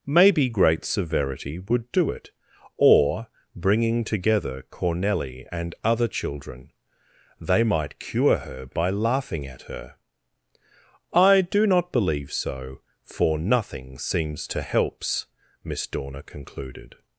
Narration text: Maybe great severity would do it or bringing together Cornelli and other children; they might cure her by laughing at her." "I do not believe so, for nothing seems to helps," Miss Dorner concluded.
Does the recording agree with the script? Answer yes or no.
yes